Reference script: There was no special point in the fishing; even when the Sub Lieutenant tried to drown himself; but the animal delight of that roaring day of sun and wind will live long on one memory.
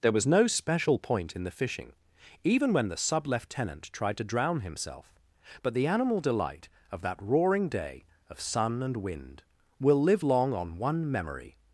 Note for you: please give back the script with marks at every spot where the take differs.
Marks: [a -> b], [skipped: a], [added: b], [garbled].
There was no special point in the fishing; even when the Sub Lieutenant tried to drown himself; but the animal delight of that roaring day of sun and wind will live long on one memory.